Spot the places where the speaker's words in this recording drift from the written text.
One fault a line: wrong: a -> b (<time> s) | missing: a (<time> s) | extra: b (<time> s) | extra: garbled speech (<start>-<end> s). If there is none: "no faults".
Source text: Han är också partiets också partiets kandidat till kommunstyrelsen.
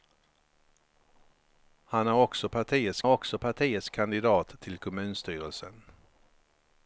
no faults